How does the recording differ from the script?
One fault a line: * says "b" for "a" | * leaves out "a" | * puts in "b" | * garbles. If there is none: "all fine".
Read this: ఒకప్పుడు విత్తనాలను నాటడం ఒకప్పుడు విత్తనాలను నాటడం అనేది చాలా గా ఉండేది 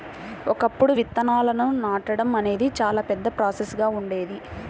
* says "అనేది చాలా పెద్ద ప్రాసెస్" for "ఒకప్పుడు విత్తనాలను నాటడం అనేది చాలా"